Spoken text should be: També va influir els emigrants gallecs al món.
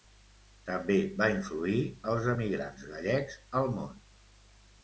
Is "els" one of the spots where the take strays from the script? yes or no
no